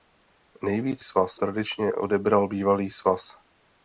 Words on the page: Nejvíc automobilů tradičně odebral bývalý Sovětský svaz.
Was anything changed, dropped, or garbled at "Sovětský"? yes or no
yes